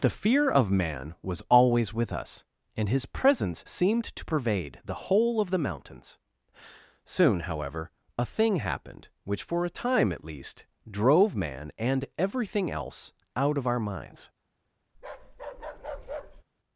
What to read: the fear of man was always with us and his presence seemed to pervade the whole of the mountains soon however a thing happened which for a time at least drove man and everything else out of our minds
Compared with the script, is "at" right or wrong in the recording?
right